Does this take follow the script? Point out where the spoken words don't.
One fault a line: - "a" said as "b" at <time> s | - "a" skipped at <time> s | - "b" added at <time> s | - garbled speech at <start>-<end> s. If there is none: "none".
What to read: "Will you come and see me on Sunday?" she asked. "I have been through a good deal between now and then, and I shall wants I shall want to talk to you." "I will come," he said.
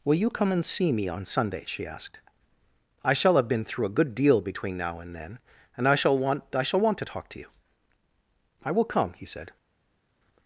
- "shall" added at 3.1 s
- "wants" said as "want" at 6.2 s